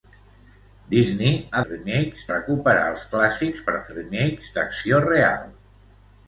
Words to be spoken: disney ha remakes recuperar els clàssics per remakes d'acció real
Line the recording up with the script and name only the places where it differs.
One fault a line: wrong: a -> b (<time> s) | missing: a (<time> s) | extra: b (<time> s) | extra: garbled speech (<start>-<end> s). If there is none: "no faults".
no faults